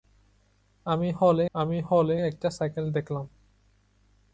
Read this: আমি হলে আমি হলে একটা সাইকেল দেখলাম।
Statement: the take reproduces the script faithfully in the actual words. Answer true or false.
true